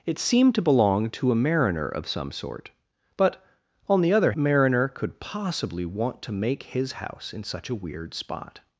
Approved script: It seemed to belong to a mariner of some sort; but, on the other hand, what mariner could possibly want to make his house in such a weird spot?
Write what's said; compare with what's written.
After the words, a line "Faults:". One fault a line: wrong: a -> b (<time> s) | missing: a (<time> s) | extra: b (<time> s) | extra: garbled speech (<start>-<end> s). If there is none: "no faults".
It seemed to belong to a mariner of some sort; but, on the other mariner could possibly want to make his house in such a weird spot?
Faults:
missing: hand what (4.3 s)